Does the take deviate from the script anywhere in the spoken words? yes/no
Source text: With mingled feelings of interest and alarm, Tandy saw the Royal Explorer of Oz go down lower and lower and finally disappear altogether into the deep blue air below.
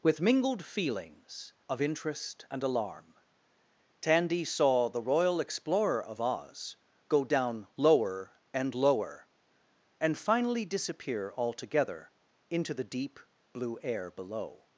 no